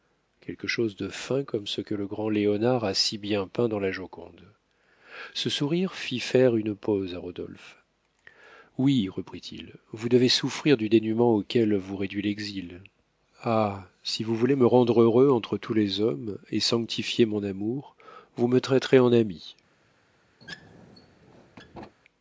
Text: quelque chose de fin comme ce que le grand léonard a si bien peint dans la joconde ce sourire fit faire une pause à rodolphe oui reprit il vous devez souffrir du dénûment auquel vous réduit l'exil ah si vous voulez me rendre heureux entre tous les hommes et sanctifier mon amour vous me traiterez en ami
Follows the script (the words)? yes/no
yes